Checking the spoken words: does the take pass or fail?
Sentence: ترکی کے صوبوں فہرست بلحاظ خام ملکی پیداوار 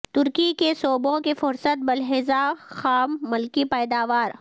fail